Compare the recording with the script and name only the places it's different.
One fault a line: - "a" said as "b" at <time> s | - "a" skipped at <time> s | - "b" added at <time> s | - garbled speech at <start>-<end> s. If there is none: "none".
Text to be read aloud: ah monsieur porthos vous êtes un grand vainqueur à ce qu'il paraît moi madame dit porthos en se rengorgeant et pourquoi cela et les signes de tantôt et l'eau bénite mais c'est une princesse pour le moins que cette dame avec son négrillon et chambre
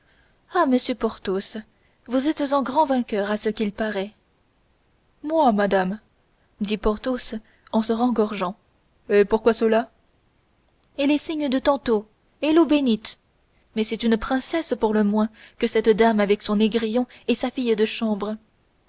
- "sa fille de" added at 17.3 s